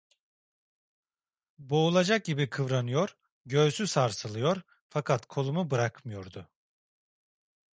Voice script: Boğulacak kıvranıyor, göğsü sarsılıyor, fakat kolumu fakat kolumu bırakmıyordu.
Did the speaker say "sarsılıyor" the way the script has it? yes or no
yes